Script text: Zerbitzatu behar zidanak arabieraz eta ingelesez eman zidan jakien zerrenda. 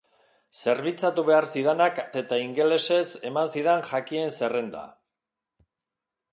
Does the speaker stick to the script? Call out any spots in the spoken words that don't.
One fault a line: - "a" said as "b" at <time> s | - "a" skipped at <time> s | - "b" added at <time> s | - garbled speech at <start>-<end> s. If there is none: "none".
- "arabieraz" skipped at 2.0 s